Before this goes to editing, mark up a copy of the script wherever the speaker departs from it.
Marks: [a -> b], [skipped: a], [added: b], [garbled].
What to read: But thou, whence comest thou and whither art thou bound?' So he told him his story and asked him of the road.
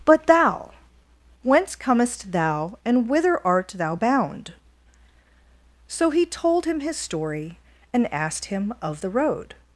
But thou, whence comest thou and whither art thou bound?' So he told him his story and asked him of the road.